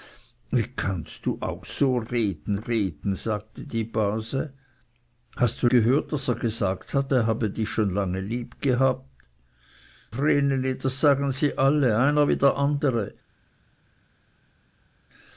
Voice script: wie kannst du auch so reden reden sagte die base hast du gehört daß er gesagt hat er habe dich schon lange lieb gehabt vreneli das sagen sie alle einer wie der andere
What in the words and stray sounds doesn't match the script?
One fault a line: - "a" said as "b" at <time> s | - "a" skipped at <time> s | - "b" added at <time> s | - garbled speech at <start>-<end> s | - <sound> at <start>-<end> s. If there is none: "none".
none